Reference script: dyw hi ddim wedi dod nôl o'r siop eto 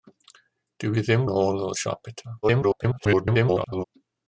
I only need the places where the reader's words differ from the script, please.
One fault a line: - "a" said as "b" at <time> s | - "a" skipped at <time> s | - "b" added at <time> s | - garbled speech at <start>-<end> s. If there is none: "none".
- "wedi dod" skipped at 1.2 s
- garbled speech at 2.4-3.8 s